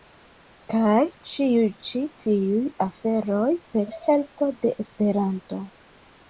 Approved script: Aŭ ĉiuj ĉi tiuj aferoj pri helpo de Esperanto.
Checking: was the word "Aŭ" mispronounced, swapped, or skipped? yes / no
yes